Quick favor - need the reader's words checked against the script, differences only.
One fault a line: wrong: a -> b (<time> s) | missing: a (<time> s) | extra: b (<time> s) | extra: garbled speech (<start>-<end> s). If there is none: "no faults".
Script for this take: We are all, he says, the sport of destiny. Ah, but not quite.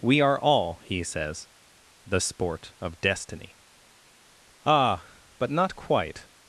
no faults